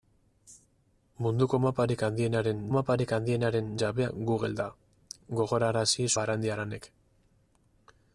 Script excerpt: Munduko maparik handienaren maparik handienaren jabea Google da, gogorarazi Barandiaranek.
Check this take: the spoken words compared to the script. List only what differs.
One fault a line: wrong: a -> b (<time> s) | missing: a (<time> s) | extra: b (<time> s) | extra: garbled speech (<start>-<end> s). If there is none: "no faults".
no faults